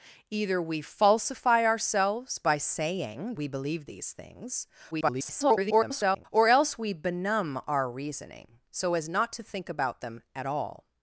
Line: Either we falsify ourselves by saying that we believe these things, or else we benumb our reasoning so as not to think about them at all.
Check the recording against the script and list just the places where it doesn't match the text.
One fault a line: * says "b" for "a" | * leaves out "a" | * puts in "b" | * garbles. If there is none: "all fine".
* leaves out "that"
* garbles